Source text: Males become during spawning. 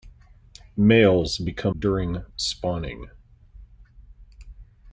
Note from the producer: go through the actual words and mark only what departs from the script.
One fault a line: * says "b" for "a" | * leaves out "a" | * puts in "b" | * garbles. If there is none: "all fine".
all fine